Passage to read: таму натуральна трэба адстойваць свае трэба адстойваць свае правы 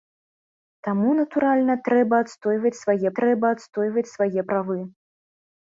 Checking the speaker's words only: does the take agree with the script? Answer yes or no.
yes